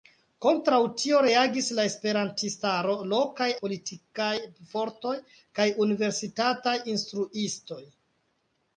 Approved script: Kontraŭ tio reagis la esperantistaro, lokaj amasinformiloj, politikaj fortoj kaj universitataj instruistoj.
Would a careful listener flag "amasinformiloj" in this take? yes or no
yes